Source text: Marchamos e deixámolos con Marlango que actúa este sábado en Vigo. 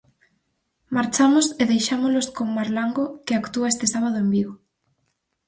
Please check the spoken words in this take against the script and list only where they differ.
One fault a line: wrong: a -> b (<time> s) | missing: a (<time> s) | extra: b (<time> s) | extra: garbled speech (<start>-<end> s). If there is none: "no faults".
no faults